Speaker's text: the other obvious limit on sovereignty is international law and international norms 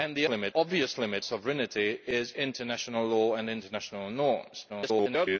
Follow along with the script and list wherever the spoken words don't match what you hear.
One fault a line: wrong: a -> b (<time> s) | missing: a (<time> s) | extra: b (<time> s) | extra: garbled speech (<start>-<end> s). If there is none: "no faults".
wrong: other -> limit (0.3 s)
missing: on (1.2 s)
extra: garbled speech (4.7-5.4 s)